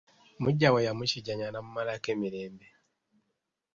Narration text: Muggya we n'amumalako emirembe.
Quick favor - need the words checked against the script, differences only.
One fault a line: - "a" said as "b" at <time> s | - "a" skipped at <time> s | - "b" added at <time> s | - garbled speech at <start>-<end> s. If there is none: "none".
- "yamukijjanya" added at 0.9 s